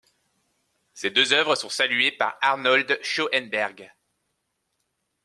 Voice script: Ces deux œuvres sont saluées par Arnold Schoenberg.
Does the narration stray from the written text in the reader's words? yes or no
no